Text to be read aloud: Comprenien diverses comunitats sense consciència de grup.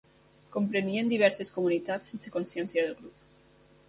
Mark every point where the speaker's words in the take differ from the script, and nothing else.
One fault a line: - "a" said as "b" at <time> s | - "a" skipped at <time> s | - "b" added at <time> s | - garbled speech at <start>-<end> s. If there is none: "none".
none